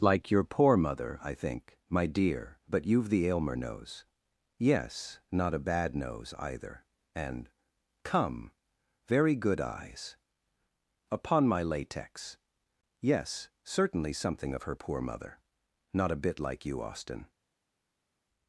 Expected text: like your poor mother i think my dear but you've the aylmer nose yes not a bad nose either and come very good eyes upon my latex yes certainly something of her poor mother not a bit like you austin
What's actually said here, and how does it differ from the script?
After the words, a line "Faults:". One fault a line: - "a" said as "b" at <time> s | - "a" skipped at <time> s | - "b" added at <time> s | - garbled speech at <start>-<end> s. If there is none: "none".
like your poor mother i think my dear but you've the aylmer nose yes not a bad nose either and come very good eyes upon my latex yes certainly something of her poor mother not a bit like you austin
Faults:
none